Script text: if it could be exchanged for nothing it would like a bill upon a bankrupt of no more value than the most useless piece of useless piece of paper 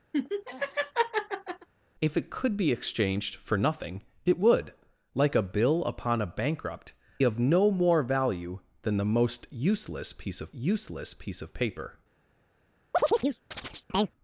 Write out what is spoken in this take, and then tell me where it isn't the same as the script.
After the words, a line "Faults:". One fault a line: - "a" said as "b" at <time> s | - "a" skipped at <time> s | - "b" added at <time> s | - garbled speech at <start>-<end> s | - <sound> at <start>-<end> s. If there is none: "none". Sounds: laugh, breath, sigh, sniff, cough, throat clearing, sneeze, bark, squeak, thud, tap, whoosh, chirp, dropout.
if it could be exchanged for nothing it would like a bill upon a bankrupt of no more value than the most useless piece of useless piece of paper
Faults:
- laugh at 0.1-1.7 s
- chirp at 12.9-14.1 s